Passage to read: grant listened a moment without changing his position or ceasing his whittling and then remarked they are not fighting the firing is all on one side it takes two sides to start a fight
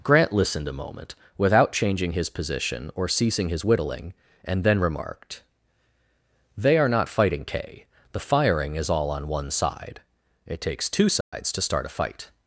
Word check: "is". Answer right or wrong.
right